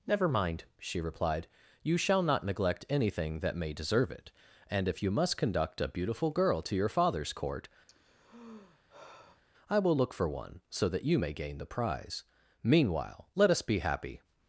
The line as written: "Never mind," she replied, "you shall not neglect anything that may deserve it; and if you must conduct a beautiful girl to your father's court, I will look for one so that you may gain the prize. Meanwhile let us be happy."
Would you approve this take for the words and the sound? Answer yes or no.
no